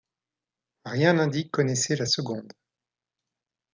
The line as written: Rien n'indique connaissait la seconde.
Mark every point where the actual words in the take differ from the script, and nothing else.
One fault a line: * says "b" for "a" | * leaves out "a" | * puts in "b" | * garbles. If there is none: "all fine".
all fine